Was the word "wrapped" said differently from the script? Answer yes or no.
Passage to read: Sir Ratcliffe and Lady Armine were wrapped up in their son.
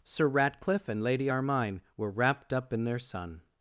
no